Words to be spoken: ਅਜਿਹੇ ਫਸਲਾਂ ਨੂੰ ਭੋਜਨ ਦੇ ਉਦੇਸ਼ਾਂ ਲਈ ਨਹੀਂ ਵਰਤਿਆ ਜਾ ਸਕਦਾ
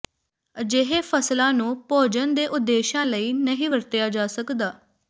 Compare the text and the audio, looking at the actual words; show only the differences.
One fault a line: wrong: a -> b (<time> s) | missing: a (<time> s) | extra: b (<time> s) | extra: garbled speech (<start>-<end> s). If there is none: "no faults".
no faults